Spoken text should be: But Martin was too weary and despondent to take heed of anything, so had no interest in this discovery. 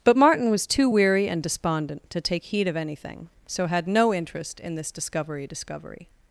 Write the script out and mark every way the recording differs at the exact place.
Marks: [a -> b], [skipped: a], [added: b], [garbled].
But Martin was too weary and despondent to take heed of anything, so had no interest in this discovery. [added: discovery]